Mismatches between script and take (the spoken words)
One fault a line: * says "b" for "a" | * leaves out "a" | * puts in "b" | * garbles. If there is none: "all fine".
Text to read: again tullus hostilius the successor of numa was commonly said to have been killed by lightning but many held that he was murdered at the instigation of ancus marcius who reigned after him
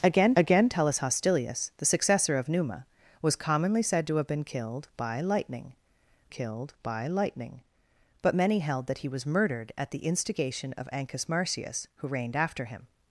* puts in "again"
* puts in "killed by lightning"